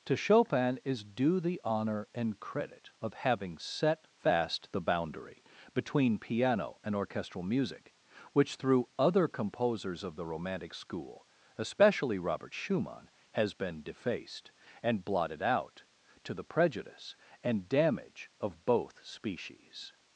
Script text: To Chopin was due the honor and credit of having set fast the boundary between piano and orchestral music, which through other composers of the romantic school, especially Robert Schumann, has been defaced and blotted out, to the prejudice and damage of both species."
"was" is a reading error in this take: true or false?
true